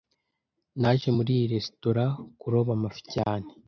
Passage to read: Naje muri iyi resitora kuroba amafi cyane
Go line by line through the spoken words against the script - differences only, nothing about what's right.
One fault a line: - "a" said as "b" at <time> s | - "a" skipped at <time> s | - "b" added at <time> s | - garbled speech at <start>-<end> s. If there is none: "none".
none